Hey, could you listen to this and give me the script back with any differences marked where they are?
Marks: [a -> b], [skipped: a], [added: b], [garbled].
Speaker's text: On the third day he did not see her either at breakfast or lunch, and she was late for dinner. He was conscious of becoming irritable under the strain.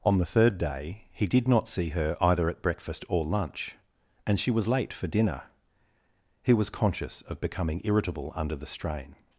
On the third day he did not see her either at breakfast or lunch, and she was late for dinner. He was conscious of becoming irritable under the strain.